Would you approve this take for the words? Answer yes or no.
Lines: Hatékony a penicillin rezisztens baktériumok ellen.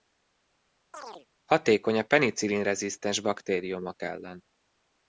yes